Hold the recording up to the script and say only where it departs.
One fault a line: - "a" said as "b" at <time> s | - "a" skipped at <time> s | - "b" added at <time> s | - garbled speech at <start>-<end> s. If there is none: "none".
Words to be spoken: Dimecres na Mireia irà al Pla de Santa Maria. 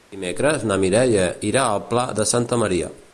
none